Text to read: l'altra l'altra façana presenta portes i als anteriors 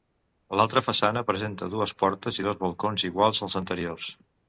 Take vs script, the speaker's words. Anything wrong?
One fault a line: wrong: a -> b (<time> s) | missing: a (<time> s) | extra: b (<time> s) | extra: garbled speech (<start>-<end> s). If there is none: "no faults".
missing: l'altra (0.8 s)
extra: dues (1.8 s)
extra: dos balcons iguals (2.5 s)